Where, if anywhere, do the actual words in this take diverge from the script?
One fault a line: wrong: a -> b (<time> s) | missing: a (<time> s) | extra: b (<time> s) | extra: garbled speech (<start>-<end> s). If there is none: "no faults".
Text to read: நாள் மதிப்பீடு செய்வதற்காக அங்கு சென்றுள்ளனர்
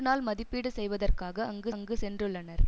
extra: அங்கு (1.7 s)